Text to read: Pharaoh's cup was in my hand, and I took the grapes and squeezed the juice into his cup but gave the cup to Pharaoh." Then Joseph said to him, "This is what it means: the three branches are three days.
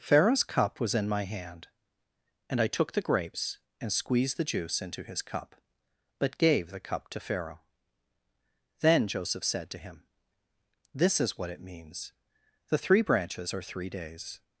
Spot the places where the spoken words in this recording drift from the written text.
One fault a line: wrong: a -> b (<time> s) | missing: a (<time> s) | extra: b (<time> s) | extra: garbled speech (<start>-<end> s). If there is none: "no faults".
no faults